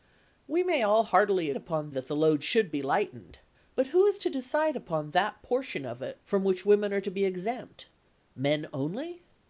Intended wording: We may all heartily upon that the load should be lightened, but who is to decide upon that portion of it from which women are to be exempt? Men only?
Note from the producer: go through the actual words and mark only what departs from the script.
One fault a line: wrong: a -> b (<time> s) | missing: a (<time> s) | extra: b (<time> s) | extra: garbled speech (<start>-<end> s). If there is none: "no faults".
no faults